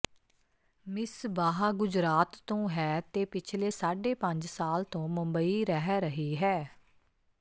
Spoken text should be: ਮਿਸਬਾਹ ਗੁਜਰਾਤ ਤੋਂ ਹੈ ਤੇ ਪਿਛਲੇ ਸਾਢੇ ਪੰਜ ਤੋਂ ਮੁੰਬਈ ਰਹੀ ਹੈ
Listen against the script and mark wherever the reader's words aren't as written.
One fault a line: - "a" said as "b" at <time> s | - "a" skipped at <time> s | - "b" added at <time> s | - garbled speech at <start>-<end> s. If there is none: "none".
- "ਸਾਲ" added at 4.5 s
- "ਰਹਿ" added at 5.7 s